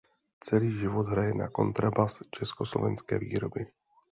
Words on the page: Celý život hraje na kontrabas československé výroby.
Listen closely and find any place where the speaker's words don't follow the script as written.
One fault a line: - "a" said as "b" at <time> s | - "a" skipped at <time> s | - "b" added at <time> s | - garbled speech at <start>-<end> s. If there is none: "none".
none